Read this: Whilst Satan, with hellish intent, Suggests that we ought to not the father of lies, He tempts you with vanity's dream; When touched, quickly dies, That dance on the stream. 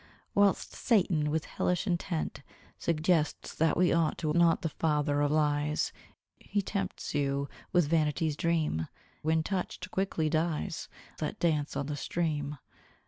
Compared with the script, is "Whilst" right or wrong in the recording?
right